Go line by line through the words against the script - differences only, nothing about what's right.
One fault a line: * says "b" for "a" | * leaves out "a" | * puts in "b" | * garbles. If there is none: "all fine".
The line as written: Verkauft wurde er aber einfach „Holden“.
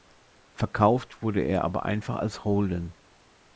* puts in "als"